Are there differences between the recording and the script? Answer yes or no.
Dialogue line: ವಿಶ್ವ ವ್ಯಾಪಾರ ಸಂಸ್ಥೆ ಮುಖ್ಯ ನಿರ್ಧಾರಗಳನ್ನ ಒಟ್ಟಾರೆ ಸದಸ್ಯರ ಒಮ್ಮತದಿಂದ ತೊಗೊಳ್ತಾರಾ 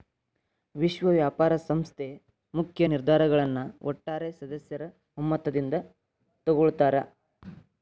no